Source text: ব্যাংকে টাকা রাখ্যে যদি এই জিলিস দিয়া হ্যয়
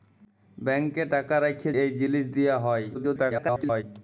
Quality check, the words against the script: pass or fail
fail